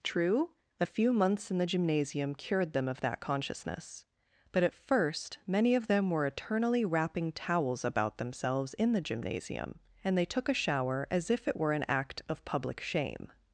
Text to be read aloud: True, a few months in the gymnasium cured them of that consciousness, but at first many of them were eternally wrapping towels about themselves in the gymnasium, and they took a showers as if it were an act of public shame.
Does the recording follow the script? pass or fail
fail